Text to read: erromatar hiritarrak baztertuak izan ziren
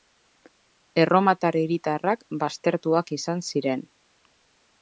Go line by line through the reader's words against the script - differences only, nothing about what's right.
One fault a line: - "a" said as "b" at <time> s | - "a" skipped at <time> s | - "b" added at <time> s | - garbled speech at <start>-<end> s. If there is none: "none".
none